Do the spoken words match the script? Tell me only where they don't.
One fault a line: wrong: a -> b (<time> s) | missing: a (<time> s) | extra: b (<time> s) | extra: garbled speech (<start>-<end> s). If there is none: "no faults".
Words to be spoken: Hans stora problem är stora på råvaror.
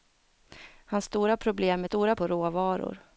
no faults